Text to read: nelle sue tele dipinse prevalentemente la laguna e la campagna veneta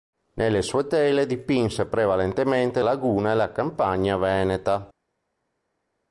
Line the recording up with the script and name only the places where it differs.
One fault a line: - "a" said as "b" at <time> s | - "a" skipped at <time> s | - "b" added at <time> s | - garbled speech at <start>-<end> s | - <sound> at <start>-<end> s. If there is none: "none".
- "la" skipped at 2.8 s